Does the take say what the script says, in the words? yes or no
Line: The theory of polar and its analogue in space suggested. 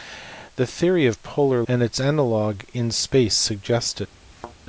yes